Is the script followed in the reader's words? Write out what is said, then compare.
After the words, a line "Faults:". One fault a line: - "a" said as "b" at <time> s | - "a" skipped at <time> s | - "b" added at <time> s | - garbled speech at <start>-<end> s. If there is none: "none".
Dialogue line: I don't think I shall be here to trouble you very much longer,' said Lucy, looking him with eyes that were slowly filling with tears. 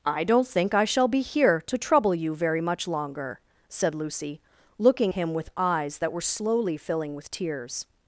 I don't think I shall be here to trouble you very much longer,' said Lucy, looking him with eyes that were slowly filling with tears.
Faults:
none